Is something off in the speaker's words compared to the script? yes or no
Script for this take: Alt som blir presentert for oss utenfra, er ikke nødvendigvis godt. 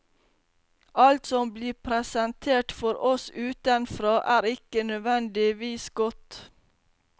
no